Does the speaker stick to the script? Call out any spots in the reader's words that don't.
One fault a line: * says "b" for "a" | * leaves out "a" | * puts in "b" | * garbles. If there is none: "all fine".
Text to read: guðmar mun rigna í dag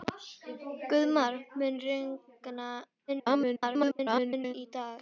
* garbles